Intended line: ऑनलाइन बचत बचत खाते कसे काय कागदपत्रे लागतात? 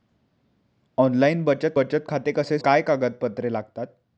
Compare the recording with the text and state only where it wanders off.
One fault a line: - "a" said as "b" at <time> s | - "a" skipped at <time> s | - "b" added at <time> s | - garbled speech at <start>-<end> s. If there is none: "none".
none